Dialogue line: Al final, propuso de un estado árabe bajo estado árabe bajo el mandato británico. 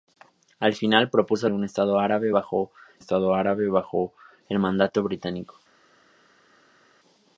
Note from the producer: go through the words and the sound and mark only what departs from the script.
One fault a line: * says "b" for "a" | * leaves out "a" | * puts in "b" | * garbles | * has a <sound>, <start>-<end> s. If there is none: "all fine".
all fine